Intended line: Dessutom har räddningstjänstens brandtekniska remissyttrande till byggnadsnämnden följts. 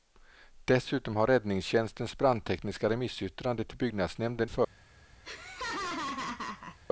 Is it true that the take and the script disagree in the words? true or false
false